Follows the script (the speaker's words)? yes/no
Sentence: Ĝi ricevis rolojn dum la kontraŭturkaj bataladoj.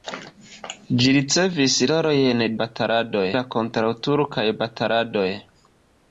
no